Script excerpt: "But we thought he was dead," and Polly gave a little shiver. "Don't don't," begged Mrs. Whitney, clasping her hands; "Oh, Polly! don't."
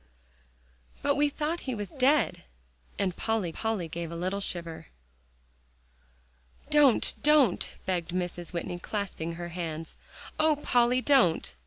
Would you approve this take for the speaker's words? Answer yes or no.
no